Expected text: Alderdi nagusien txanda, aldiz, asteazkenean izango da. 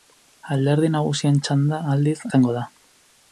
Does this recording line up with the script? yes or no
no